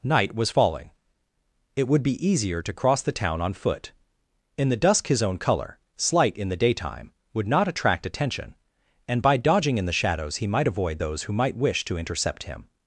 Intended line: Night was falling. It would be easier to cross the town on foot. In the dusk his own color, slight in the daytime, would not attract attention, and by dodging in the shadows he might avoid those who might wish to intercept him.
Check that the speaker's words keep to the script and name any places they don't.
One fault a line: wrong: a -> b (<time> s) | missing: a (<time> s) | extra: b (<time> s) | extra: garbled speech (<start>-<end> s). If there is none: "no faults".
no faults